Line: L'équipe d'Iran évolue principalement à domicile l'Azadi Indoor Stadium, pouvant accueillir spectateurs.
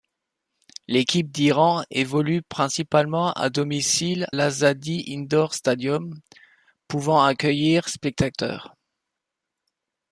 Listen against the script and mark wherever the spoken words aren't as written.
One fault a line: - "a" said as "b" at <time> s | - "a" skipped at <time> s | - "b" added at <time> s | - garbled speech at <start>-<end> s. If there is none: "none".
none